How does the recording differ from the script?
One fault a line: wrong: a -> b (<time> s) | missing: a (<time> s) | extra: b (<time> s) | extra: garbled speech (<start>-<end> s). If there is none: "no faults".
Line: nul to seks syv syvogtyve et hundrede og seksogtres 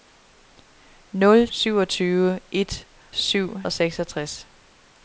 missing: to seks syv (1.5 s)
wrong: hundrede -> syv (3.1 s)